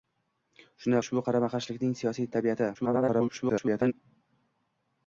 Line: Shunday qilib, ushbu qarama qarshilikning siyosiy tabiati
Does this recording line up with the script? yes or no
no